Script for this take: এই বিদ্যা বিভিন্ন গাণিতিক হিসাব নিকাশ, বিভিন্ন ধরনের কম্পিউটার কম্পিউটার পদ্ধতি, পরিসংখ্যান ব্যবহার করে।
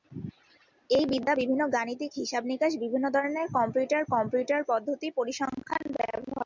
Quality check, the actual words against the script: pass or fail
pass